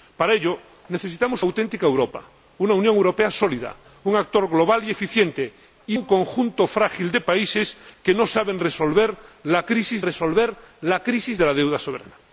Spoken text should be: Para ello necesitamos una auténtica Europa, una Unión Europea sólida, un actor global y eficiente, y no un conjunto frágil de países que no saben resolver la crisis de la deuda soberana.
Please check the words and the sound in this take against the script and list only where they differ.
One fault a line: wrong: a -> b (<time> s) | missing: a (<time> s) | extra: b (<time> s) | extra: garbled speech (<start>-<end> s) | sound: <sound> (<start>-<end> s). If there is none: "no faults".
missing: una (1.4 s)
missing: no (6.0 s)
extra: resolver la crisis (10.0 s)